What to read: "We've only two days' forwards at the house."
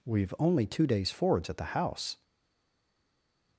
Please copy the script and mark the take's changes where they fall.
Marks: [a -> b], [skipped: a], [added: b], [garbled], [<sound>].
"We've only two days' forwards at the house."